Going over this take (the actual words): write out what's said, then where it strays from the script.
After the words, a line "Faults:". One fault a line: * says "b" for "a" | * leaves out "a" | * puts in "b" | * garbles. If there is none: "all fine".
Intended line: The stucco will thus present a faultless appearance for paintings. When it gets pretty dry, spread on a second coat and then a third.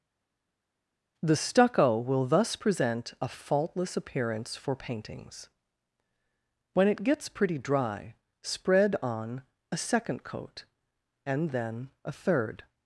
The stucco will thus present a faultless appearance for paintings. When it gets pretty dry, spread on a second coat and then a third.
Faults:
all fine